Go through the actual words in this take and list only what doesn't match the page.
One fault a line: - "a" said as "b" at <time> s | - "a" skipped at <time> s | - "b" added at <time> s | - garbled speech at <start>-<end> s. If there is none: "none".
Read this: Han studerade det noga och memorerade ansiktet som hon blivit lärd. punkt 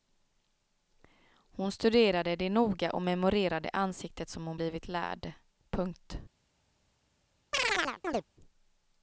- "Han" said as "Hon" at 1.3 s